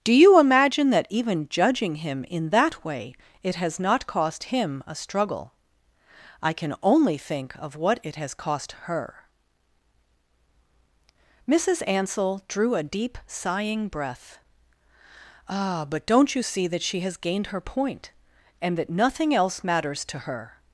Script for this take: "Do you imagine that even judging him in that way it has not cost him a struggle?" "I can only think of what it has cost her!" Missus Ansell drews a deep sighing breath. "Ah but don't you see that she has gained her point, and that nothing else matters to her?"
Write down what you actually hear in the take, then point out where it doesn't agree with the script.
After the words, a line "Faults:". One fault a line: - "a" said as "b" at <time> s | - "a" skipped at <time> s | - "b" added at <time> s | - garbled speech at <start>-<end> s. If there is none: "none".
"Do you imagine that even judging him in that way it has not cost him a struggle?" "I can only think of what it has cost her!" Missus Ansell drew a deep sighing breath. "Ah but don't you see that she has gained her point, and that nothing else matters to her?"
Faults:
- "drews" said as "drew" at 12.5 s